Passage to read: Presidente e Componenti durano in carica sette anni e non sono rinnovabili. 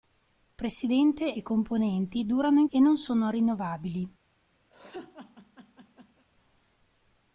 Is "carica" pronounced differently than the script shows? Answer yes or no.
yes